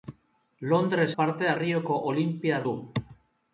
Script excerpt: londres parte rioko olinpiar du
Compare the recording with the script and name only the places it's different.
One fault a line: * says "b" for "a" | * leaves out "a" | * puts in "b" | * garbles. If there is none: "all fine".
all fine